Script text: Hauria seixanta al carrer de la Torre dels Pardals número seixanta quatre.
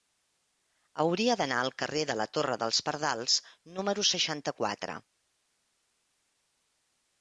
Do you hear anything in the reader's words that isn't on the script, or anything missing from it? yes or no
yes